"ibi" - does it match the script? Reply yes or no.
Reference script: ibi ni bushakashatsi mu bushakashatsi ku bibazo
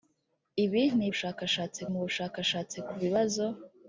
yes